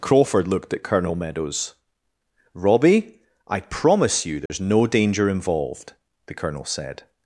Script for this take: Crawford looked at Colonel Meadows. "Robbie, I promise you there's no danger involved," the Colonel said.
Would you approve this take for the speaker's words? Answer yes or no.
yes